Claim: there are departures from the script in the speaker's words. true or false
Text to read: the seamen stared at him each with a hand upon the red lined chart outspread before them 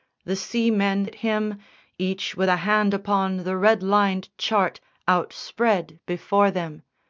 true